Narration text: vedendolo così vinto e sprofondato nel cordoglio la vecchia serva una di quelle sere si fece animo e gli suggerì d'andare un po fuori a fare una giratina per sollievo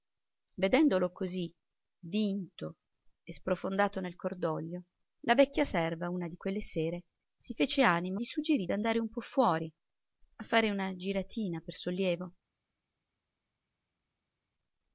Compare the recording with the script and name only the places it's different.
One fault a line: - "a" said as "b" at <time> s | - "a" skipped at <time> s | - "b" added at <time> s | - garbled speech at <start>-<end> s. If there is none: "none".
- "e" skipped at 8.2 s